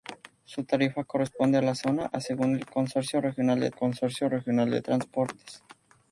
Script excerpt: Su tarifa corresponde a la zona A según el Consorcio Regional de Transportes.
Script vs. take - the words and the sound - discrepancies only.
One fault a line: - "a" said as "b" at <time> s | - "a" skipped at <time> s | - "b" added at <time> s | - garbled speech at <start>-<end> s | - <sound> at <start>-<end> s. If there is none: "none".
- "Consorcio Regional de" added at 3.7 s